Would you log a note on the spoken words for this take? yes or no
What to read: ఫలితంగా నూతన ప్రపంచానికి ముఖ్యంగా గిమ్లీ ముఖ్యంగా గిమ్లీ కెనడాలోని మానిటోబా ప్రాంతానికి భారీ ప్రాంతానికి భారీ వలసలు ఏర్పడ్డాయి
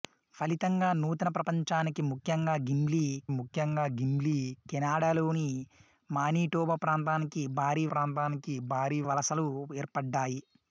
no